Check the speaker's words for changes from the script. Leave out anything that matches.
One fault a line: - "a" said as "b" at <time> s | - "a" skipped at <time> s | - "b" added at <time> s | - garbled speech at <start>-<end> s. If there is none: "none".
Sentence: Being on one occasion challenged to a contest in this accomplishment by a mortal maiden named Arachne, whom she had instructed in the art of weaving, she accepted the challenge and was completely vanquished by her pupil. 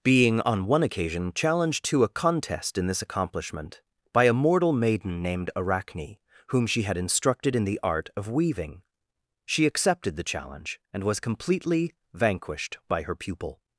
none